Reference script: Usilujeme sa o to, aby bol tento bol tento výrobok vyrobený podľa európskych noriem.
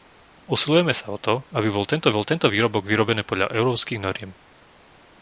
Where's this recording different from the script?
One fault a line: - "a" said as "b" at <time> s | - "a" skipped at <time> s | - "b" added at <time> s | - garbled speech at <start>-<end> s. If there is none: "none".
none